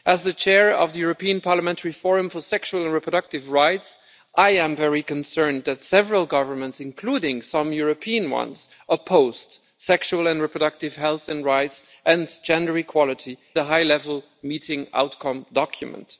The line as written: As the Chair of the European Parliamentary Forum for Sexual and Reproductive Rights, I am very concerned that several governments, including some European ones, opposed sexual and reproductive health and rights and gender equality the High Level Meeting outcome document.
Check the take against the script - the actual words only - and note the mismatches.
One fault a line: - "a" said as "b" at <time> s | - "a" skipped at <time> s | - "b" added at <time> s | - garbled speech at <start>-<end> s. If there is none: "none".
none